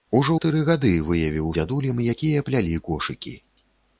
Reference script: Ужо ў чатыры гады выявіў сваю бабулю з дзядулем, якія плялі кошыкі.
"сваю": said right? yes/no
no